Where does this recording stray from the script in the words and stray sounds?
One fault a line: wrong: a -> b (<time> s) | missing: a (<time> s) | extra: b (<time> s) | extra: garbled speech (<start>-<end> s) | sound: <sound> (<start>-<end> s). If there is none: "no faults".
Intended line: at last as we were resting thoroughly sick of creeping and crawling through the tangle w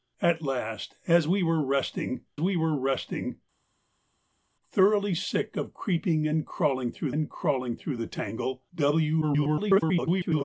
extra: we were resting (2.4 s)
extra: and crawling through (7.1 s)
extra: garbled speech (9.2-10.4 s)